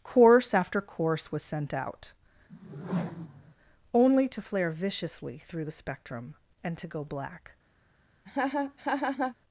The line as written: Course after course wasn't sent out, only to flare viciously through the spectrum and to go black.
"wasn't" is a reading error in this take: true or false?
true